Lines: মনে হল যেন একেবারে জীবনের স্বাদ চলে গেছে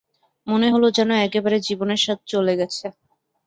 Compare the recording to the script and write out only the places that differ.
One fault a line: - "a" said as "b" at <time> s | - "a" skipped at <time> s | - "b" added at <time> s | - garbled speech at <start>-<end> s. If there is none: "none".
none